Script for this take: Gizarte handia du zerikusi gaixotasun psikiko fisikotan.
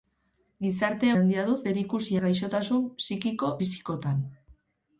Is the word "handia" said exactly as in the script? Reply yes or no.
yes